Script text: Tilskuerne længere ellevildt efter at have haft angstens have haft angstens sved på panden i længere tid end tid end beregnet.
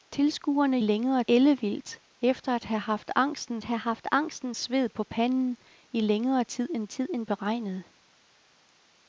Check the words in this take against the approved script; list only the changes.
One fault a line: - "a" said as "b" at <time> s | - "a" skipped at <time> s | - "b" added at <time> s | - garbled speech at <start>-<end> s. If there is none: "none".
none